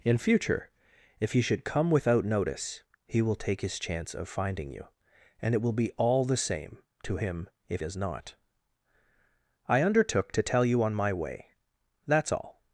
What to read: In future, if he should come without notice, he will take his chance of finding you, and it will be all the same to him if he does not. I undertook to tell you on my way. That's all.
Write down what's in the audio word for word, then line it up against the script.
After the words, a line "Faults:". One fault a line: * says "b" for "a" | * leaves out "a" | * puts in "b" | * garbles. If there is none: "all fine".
In future, if he should come without notice, he will take his chance of finding you, and it will be all the same to him if does not. I undertook to tell you on my way. That's all.
Faults:
* leaves out "he"